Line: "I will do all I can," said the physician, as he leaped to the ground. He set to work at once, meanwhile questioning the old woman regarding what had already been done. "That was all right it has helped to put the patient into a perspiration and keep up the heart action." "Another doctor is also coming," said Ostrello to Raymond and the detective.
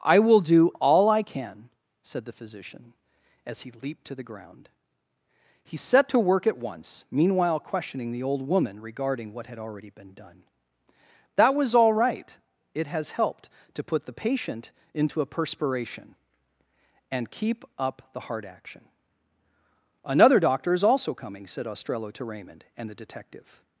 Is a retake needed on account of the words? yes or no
no